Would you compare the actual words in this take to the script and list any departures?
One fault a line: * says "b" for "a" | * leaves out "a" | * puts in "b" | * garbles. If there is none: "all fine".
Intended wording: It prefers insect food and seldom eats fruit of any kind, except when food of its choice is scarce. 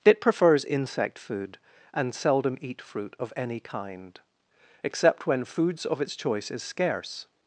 * says "eat" for "eats"
* says "foods" for "food"